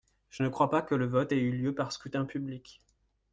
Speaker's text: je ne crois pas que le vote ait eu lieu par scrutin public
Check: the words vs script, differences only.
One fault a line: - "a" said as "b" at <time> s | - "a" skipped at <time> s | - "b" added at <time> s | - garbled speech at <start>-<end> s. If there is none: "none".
none